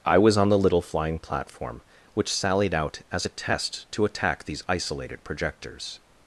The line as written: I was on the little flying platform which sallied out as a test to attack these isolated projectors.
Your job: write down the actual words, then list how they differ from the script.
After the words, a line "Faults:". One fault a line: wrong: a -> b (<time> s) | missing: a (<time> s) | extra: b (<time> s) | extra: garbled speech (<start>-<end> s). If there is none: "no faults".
I was on the little flying platform which sallied out as a test to attack these isolated projectors.
Faults:
no faults